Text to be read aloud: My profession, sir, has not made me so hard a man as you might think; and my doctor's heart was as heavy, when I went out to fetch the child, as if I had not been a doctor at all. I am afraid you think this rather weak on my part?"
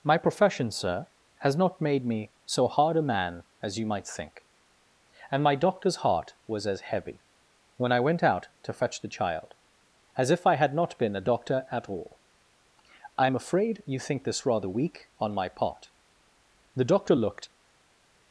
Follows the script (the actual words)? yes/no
no